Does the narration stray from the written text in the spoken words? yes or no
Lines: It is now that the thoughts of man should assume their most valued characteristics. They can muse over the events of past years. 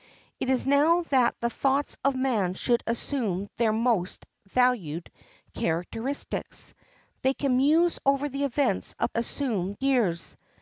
yes